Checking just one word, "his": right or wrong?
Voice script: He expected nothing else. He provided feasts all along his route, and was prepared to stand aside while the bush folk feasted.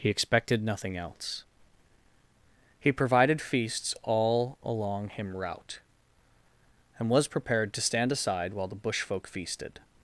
wrong